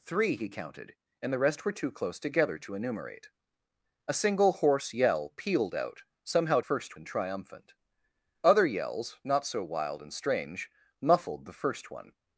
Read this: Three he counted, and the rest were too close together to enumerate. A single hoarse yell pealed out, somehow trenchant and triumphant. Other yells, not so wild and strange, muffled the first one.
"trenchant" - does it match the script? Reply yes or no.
no